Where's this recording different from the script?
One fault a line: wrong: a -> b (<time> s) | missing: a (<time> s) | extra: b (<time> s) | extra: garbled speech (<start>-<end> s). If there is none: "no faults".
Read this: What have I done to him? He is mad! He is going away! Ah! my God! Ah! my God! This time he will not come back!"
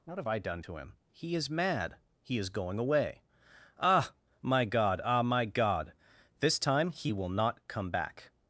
no faults